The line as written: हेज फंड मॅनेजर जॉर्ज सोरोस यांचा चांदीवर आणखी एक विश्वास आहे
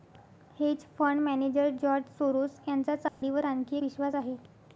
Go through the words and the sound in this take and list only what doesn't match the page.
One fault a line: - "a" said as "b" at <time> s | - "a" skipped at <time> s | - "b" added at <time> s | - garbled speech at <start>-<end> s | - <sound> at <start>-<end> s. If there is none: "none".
- dropout at 3.1-3.2 s
- "एक" skipped at 3.8 s